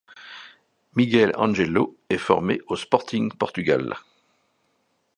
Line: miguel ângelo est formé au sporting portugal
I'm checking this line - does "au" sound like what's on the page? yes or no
yes